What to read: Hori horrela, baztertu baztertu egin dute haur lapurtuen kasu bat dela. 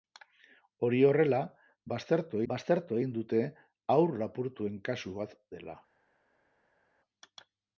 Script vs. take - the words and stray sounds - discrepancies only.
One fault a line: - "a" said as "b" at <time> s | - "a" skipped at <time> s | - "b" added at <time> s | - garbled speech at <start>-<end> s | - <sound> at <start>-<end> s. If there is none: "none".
none